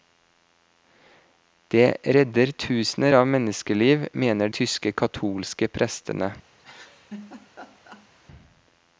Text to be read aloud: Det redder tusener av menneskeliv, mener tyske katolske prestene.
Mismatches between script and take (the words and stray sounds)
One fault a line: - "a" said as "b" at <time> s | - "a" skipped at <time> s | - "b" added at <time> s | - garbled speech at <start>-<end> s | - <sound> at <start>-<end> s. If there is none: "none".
- laugh at 6.6-8.1 s